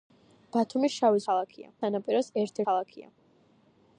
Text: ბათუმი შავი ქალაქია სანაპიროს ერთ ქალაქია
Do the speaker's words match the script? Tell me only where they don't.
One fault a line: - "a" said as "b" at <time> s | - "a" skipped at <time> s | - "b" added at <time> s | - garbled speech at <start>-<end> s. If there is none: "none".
none